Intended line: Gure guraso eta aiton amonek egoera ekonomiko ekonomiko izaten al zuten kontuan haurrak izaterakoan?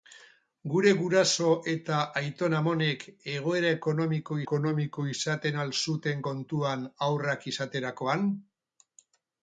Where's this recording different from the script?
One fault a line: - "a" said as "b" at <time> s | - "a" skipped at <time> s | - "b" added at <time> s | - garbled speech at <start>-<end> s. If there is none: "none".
none